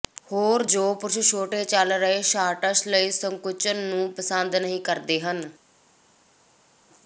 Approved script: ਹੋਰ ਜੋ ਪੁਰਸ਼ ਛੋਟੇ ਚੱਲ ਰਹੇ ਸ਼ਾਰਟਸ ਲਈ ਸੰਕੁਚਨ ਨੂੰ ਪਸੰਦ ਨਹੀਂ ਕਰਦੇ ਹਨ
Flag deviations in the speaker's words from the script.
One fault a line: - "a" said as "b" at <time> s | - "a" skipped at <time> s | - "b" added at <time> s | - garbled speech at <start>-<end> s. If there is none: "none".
none